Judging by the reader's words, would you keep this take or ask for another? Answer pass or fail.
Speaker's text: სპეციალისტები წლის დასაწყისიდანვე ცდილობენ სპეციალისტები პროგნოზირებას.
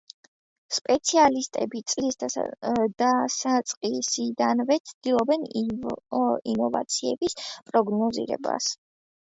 fail